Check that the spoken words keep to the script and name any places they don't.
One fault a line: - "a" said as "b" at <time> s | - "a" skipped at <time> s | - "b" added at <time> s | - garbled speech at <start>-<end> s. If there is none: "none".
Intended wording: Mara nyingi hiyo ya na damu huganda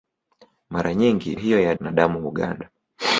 none